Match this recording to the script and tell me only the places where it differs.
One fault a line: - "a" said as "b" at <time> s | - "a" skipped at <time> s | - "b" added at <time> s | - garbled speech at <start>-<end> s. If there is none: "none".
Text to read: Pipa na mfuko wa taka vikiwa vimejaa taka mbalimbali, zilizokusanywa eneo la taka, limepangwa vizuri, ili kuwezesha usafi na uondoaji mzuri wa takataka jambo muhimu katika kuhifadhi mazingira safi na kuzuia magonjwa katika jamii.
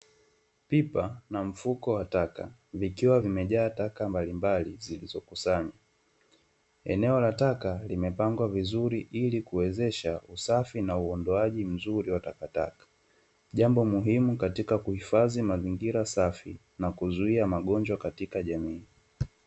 none